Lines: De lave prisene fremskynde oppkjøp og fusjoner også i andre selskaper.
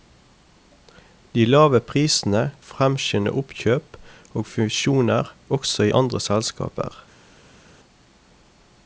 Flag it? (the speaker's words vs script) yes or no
no